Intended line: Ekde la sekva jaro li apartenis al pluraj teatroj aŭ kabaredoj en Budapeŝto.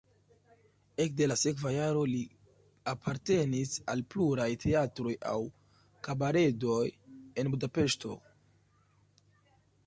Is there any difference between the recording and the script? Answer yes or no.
no